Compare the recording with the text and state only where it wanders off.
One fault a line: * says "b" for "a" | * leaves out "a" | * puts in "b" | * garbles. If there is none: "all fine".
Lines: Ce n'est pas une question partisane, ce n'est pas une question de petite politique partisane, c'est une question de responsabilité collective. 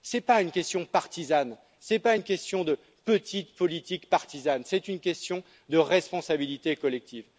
all fine